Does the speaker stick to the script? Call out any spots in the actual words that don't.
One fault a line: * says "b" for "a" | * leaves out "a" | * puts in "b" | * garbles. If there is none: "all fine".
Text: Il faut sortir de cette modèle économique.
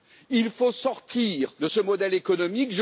* says "ce" for "cette"